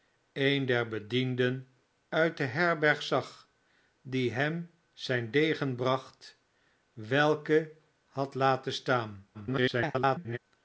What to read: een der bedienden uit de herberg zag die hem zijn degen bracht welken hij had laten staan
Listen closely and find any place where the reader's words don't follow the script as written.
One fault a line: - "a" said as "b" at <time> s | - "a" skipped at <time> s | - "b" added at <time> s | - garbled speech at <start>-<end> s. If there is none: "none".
- "hij" skipped at 7.7 s
- garbled speech at 9.3-10.4 s